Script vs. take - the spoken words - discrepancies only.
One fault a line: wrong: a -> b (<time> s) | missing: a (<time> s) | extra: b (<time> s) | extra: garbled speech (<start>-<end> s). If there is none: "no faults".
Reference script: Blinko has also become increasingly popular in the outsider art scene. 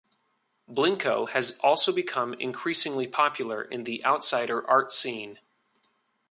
no faults